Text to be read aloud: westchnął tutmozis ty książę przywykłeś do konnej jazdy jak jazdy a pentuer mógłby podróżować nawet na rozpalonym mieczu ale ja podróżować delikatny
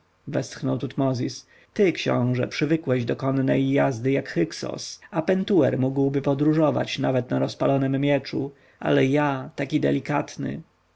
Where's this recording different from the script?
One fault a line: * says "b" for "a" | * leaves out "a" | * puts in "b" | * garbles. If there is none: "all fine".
* says "hyksos" for "jazdy"
* says "taki" for "podróżować"